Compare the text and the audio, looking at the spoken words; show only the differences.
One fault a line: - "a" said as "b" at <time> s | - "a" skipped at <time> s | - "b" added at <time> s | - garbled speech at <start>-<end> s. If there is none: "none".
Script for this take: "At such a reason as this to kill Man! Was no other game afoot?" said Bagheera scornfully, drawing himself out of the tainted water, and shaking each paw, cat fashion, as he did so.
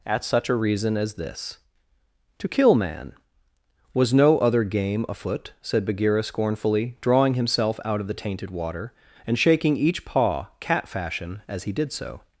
none